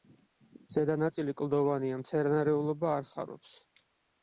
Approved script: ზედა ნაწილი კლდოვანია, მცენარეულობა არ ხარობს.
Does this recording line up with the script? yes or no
yes